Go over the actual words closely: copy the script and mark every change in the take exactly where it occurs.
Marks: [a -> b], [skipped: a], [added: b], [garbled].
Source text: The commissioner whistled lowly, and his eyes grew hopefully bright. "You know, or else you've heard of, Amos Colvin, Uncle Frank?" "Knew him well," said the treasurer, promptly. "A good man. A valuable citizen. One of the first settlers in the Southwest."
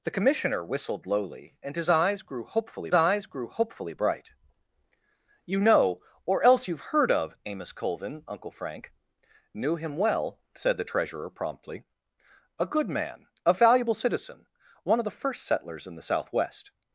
The commissioner whistled lowly, and his eyes grew hopefully [added: eyes grew hopefully] bright. "You know, or else you've heard of, Amos Colvin, Uncle Frank?" "Knew him well," said the treasurer, promptly. "A good man. A valuable citizen. One of the first settlers in the Southwest."